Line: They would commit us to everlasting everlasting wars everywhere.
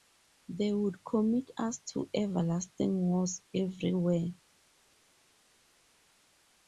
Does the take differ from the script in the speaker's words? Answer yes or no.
yes